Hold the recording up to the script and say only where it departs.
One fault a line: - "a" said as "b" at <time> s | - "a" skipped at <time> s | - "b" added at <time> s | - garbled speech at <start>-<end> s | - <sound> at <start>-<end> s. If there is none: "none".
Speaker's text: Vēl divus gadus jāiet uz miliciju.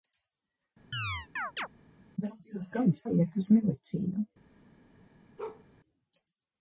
- chirp at 0.9-1.7 s
- bark at 5.4-5.6 s